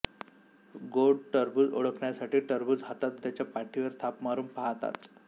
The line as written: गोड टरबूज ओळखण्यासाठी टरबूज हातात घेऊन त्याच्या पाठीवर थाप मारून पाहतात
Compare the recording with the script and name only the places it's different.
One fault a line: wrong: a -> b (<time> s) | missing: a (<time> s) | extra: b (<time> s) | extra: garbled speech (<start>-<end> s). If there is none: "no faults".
missing: घेऊन (3.2 s)